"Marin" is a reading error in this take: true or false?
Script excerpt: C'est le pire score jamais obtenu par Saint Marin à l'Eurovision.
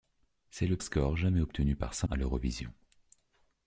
true